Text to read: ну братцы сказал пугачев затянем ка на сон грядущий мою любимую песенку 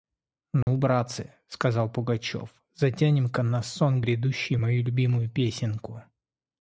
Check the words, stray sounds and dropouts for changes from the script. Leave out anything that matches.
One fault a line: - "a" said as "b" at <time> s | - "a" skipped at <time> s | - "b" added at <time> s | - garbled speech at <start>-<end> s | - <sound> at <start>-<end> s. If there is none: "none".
- dropout at 0.6-0.7 s